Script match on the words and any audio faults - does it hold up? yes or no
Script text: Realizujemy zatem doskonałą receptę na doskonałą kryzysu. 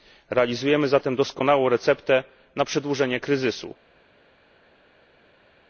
no